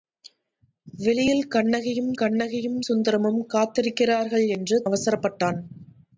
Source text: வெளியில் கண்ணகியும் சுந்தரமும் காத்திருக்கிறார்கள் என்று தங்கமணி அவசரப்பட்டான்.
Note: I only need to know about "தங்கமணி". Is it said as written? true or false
false